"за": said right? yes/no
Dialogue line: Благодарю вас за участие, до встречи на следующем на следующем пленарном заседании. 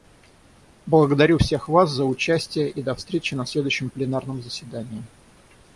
yes